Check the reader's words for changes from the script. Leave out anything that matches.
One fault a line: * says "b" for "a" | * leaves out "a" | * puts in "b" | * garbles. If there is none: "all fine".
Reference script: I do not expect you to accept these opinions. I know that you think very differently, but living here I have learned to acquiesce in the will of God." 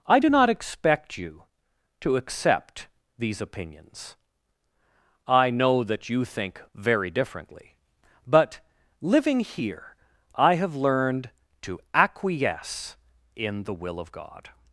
all fine